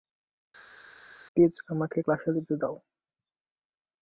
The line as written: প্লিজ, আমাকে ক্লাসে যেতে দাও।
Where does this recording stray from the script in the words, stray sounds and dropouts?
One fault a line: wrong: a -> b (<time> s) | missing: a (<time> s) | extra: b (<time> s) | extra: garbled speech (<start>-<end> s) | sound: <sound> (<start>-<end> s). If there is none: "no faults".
no faults